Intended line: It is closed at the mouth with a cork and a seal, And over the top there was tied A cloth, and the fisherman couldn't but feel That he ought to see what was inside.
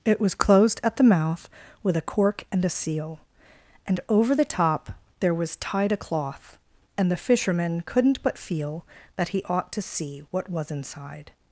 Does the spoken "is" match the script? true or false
false